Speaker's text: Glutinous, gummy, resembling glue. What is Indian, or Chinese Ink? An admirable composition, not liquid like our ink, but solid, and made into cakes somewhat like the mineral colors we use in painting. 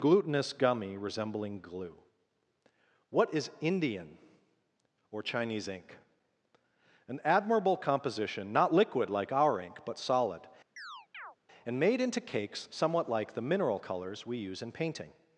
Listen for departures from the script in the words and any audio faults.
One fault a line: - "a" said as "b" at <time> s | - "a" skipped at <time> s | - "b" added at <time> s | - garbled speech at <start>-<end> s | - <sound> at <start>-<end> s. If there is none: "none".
- chirp at 10.8-11.4 s